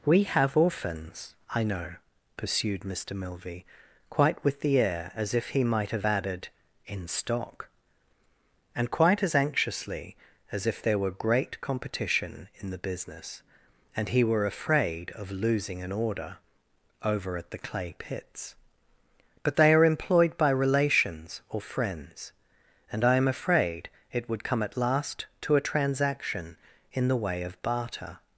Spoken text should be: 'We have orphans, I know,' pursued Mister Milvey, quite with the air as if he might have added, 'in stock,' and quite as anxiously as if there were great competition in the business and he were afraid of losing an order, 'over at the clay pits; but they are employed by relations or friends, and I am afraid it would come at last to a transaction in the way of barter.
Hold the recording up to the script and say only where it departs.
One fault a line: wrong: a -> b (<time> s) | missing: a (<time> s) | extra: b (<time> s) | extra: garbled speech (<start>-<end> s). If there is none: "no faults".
no faults